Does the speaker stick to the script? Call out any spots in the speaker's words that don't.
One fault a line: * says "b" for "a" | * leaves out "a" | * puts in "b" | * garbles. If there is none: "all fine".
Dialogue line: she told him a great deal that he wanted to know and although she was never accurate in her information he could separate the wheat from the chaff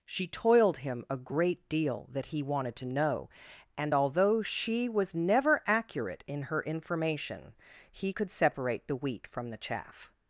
* says "toiled" for "told"